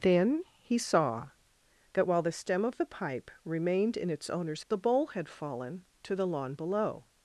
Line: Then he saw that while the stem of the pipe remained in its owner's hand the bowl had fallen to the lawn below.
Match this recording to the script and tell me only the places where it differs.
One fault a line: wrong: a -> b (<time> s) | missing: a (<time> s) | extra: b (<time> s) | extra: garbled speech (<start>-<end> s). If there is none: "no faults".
missing: hand (4.6 s)